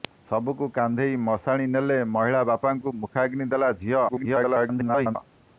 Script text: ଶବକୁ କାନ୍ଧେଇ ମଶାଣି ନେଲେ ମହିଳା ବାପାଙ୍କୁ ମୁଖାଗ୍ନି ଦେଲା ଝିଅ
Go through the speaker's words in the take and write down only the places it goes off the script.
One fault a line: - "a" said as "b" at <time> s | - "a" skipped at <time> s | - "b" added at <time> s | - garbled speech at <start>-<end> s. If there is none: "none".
- garbled speech at 4.1-5.2 s